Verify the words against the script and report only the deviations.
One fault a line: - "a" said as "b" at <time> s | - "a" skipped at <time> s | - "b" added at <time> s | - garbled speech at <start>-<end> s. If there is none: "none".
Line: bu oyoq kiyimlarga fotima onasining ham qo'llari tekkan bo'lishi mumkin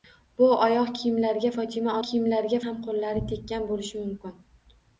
- "onasining" said as "kiyimlarga" at 2.1 s